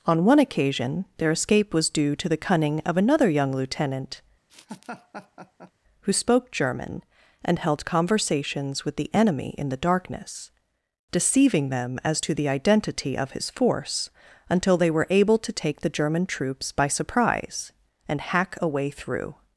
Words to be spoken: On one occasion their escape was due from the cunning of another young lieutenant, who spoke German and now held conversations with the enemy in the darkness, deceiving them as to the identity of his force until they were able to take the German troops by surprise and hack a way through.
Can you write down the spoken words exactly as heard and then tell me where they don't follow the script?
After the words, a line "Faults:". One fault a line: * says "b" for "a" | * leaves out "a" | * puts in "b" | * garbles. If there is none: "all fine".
On one occasion their escape was due to the cunning of another young lieutenant, who spoke German and held conversations with the enemy in the darkness, deceiving them as to the identity of his force until they were able to take the German troops by surprise and hack a way through.
Faults:
* says "to" for "from"
* leaves out "now"